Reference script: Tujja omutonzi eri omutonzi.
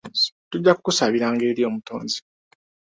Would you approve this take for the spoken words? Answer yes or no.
no